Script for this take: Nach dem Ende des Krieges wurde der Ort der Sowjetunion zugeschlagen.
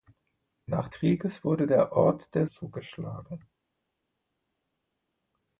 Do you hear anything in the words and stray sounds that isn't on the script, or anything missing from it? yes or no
yes